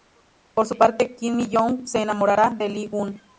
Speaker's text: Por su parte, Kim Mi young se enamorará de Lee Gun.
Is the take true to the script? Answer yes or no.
yes